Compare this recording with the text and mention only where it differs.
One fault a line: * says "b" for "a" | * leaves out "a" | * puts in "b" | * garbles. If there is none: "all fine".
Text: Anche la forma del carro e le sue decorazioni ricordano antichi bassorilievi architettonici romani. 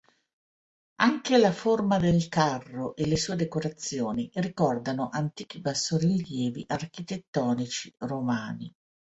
all fine